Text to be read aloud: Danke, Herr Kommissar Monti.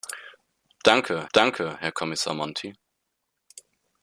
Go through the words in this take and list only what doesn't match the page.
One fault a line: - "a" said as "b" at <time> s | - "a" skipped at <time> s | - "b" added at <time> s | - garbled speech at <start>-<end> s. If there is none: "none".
- "danke" added at 1.3 s